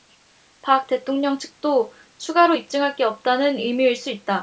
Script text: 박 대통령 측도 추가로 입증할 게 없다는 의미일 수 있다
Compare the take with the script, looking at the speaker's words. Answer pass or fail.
pass